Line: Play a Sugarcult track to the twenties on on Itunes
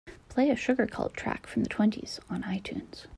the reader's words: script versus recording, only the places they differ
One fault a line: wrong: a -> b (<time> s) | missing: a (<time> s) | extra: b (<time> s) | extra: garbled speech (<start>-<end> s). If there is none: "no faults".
wrong: to -> from (1.4 s)
missing: on (2.4 s)